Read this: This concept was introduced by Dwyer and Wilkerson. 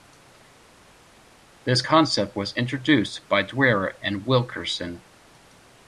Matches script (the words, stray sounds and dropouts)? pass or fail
pass